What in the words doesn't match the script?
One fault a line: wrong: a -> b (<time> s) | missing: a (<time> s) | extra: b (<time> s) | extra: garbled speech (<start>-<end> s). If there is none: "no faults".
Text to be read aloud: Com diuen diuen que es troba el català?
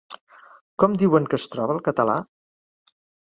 missing: diuen (1.3 s)